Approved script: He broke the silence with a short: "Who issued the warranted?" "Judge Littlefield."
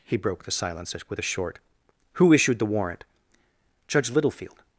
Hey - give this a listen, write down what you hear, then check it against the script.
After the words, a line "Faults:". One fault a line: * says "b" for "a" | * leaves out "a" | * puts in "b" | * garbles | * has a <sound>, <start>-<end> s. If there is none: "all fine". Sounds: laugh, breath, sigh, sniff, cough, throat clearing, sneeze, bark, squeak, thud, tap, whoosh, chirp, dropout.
He broke the silence with a short: "Who issued the warrant?" "Judge Littlefield."
Faults:
* says "warrant" for "warranted"